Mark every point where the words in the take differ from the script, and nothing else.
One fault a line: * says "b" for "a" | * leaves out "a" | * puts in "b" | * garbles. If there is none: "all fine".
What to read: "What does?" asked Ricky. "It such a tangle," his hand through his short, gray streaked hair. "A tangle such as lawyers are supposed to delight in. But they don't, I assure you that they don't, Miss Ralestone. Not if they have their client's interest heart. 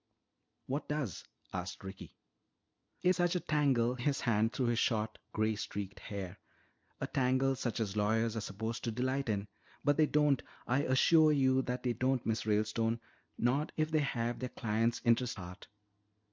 all fine